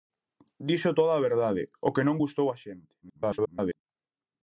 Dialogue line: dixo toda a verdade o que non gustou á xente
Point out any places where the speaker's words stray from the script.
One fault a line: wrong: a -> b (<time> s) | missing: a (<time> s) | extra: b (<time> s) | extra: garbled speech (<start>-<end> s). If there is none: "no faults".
extra: garbled speech (3.0-3.8 s)